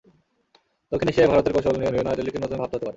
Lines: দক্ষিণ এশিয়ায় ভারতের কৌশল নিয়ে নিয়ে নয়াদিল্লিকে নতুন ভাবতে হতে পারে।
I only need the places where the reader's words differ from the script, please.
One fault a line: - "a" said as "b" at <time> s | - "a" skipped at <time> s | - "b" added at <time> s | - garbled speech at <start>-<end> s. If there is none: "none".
none